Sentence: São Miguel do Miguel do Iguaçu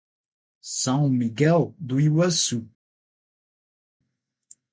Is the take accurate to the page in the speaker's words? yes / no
no